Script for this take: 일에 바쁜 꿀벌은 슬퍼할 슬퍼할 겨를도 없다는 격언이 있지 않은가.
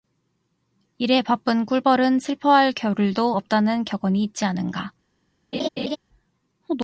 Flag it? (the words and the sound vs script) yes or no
yes